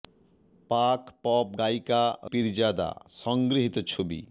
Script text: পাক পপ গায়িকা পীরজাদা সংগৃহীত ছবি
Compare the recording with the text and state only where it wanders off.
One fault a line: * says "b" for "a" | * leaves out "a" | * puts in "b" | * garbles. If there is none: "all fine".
all fine